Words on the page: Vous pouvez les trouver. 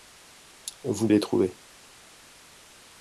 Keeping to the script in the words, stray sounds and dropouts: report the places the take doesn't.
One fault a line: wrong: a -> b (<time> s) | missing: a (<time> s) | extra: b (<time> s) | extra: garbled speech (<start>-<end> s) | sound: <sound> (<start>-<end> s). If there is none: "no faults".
missing: pouvez (1.1 s)